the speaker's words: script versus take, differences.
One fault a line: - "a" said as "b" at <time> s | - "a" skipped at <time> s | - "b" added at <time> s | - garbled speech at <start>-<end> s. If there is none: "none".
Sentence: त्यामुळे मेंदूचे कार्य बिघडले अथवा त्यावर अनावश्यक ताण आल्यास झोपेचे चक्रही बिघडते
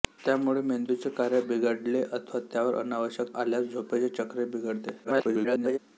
- "ताण" skipped at 3.4 s
- garbled speech at 5.0-5.8 s